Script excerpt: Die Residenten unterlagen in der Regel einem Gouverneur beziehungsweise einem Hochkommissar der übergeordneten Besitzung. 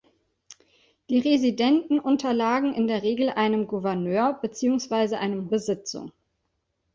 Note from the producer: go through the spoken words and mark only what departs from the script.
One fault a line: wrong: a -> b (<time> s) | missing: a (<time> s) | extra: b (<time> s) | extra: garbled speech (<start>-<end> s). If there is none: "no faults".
missing: Hochkommissar der übergeordneten (5.5 s)